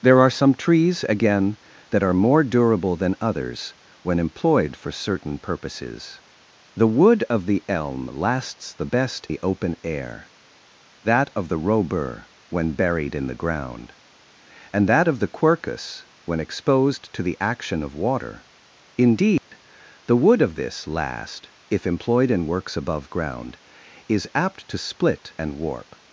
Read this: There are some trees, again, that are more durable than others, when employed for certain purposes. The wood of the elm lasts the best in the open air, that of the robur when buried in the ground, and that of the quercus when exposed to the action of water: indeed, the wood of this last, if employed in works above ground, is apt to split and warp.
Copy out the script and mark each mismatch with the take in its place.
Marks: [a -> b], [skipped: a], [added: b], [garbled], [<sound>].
There are some trees, again, that are more durable than others, when employed for certain purposes. The wood of the elm lasts the best [skipped: in] the open air, that of the robur when buried in the ground, and that of the quercus when exposed to the action of water: indeed, [dropout] the wood of this last, if employed in works above ground, is apt to split and warp.